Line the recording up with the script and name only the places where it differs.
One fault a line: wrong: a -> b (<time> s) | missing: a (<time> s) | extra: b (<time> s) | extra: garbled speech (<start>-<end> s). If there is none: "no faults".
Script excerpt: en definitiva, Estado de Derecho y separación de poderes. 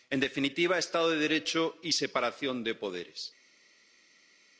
no faults